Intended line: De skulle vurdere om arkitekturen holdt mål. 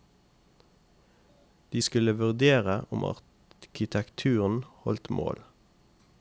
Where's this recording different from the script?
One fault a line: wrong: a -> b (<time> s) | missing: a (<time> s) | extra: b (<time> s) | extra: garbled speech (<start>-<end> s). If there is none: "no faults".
no faults